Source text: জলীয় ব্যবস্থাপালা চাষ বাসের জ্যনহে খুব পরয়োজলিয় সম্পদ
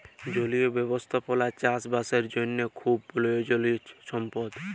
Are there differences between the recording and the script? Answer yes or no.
no